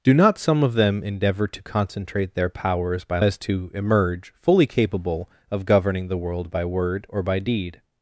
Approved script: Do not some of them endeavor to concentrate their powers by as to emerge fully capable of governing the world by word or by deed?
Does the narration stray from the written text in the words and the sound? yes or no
no